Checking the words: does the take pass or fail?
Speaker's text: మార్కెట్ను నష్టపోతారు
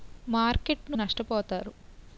pass